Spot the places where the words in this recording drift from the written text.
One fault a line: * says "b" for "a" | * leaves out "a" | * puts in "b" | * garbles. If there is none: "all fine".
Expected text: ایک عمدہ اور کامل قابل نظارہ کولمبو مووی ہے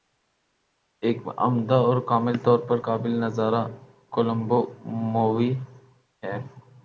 * puts in "طور پر"